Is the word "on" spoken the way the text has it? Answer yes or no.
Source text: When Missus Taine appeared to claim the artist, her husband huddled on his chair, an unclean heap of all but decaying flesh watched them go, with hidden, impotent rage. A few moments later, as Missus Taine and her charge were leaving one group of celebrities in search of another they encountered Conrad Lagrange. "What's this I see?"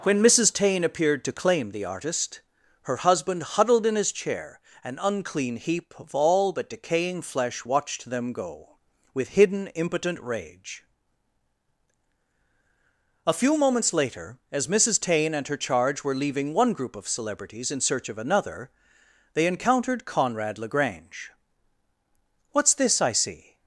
no